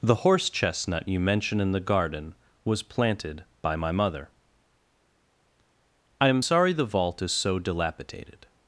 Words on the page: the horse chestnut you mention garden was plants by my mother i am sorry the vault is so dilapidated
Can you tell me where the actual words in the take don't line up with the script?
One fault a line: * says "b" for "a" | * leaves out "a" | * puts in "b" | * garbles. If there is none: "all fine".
* puts in "in the"
* says "planted" for "plants"